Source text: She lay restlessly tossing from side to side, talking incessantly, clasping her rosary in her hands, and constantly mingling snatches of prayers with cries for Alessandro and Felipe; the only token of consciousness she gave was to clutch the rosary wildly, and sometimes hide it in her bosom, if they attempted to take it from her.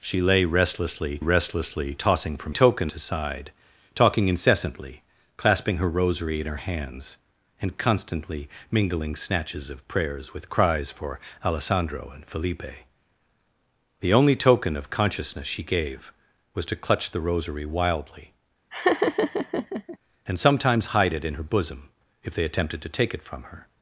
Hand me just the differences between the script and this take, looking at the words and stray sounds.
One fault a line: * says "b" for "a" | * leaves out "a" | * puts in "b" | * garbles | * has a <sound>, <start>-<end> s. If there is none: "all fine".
* puts in "restlessly"
* says "token" for "side"
* has a laugh, 18.7-20.0 s